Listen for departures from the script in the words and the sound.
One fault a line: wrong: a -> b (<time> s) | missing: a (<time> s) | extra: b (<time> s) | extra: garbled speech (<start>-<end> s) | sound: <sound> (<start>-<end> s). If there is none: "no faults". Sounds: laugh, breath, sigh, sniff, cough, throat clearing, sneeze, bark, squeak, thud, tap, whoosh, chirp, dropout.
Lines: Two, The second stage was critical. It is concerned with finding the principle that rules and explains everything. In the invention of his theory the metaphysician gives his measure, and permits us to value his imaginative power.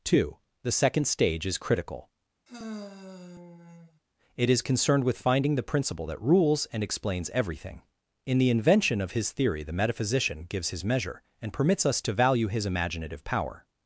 wrong: was -> is (1.5 s)
sound: sigh (2.5-4.0 s)